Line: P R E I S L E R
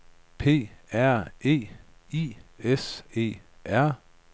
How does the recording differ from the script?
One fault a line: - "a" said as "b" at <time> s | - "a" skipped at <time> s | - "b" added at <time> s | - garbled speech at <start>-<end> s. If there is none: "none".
- "L" skipped at 3.0 s